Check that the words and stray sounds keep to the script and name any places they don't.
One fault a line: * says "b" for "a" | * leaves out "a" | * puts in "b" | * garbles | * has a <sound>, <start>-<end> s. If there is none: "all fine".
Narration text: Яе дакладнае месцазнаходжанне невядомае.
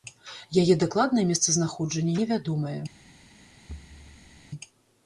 * has a thud, 3.7-4.5 s